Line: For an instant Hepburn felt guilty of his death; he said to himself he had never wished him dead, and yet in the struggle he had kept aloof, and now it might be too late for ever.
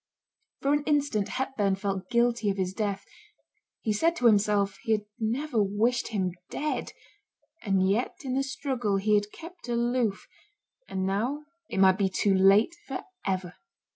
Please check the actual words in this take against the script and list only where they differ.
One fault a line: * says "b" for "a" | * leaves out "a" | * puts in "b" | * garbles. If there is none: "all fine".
all fine